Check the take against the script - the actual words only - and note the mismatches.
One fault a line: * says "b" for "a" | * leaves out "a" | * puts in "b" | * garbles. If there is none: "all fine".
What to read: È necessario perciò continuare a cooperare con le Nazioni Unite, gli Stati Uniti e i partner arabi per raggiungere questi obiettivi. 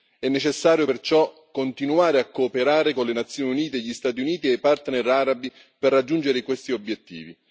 all fine